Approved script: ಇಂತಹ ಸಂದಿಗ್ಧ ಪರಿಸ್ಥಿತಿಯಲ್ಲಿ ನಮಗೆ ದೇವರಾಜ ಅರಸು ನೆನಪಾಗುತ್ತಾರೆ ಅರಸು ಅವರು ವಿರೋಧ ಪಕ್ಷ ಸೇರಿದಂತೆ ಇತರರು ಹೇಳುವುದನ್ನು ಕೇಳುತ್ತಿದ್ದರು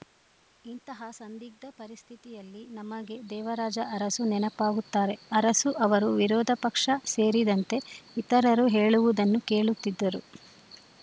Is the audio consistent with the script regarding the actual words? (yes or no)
yes